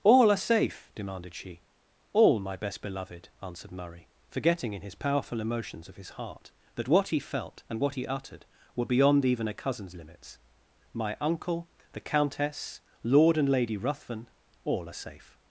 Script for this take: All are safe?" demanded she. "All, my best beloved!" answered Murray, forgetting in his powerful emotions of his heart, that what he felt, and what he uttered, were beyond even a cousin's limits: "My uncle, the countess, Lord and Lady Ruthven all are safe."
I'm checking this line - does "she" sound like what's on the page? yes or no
yes